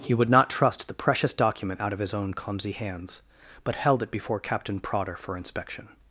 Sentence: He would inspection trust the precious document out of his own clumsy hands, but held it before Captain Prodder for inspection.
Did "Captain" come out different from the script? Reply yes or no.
no